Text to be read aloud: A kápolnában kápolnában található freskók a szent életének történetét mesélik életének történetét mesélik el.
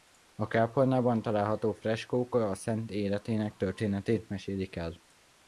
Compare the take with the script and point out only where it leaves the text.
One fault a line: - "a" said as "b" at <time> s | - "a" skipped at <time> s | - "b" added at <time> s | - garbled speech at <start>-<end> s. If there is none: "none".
- "kápolnában" skipped at 1.2 s
- "életének történetét mesélik" skipped at 4.7 s